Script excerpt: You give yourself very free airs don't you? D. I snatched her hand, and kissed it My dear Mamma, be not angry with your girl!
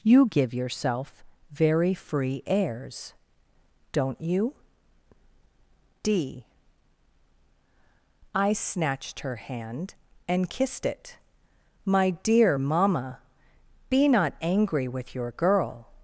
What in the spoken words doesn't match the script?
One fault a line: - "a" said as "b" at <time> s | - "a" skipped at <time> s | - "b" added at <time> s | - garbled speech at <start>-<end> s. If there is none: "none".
none